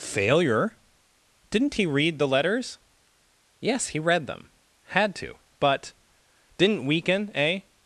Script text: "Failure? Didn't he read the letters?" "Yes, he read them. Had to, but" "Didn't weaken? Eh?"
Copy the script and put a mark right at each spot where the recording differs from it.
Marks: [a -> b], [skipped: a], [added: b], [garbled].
"Failure? Didn't he read the letters?" "Yes, he read them. Had to, but" "Didn't weaken? Eh?"